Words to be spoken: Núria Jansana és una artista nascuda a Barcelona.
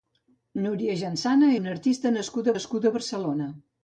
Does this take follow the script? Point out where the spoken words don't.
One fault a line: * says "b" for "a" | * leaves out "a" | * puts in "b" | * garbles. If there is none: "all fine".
* leaves out "és"
* puts in "nascuda"